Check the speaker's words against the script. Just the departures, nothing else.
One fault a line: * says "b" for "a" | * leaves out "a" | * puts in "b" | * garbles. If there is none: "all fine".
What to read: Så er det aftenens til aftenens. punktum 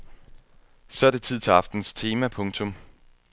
* says "tid" for "aftenens"
* puts in "tema"